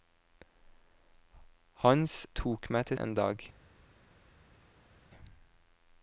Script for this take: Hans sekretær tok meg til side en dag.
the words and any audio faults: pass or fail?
fail